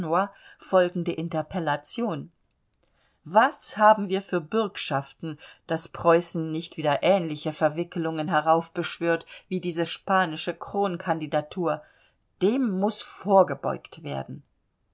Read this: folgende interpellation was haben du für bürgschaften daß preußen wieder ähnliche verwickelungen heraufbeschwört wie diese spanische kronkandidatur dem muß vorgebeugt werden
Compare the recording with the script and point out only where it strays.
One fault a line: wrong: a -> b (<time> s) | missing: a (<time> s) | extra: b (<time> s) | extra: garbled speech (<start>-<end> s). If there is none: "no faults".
wrong: du -> wir (4.1 s)
extra: nicht (6.5 s)